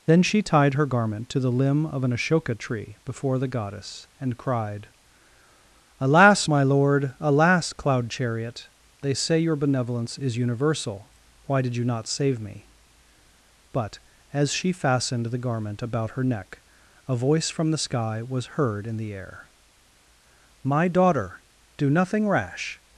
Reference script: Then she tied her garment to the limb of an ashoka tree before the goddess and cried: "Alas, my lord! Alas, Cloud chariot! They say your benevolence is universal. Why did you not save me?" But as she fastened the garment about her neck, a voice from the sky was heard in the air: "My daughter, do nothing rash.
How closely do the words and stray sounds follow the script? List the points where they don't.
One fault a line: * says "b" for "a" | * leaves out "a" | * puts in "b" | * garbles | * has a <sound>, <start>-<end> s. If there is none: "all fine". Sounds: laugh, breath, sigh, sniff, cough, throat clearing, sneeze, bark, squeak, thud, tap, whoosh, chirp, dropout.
all fine